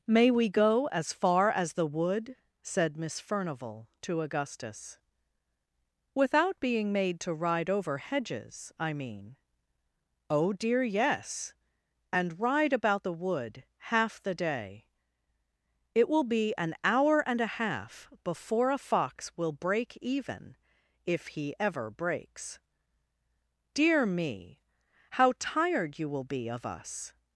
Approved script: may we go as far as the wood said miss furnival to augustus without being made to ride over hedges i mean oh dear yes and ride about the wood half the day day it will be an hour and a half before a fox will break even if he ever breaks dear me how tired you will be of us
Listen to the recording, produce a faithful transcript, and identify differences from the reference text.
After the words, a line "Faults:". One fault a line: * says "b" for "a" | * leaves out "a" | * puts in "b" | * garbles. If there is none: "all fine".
may we go as far as the wood said miss furnival to augustus without being made to ride over hedges i mean oh dear yes and ride about the wood half the day it will be an hour and a half before a fox will break even if he ever breaks dear me how tired you will be of us
Faults:
* leaves out "day"